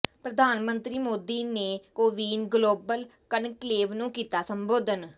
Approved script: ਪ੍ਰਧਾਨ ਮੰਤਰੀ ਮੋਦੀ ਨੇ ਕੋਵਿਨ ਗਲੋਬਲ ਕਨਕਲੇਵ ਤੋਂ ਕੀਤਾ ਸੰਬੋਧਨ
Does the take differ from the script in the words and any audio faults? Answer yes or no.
yes